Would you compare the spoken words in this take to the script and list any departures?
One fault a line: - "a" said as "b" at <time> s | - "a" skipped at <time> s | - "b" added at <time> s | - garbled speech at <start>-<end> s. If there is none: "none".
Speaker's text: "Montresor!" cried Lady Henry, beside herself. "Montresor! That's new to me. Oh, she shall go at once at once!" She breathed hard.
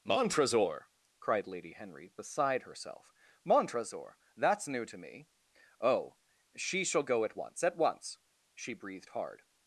none